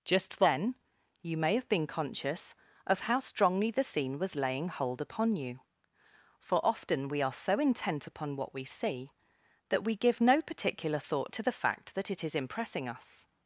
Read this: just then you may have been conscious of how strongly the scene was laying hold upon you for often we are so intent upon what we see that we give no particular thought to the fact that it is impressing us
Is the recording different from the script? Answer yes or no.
no